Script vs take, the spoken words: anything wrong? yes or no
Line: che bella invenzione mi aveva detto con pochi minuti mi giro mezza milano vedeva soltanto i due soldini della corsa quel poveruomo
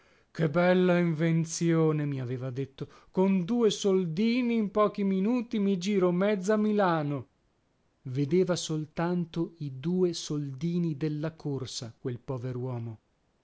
yes